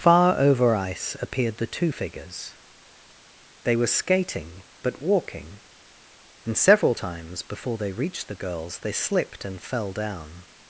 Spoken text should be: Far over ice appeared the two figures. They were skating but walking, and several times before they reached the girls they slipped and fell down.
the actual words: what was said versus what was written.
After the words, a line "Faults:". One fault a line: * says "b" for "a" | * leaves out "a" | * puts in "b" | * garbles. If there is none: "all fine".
Far over ice appeared the two figures. They were skating but walking, and several times before they reached the girls they slipped and fell down.
Faults:
all fine